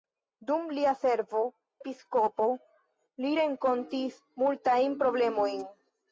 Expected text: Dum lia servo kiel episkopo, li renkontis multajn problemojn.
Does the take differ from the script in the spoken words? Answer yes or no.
yes